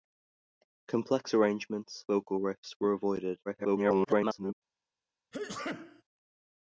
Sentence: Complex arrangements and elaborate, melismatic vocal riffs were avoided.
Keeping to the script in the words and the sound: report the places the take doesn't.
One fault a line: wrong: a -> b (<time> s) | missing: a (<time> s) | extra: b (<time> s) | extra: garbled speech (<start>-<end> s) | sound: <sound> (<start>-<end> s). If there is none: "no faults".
missing: and elaborate melismatic (2.0 s)
extra: garbled speech (3.5-4.5 s)
sound: sneeze (5.3-6.0 s)